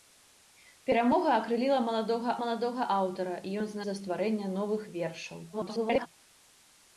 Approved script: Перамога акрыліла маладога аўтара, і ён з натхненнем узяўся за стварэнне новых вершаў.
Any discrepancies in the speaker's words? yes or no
yes